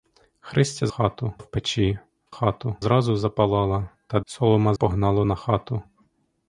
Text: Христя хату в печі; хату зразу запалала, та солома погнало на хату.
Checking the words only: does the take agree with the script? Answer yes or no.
yes